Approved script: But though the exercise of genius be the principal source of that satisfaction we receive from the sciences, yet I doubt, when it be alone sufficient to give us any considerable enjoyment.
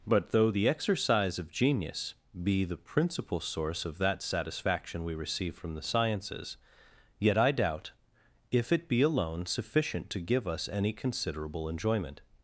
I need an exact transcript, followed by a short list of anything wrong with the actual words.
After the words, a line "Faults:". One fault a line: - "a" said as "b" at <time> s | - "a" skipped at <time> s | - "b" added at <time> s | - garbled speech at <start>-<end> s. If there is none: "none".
But though the exercise of genius be the principal source of that satisfaction we receive from the sciences, yet I doubt, if it be alone sufficient to give us any considerable enjoyment.
Faults:
- "when" said as "if" at 8.5 s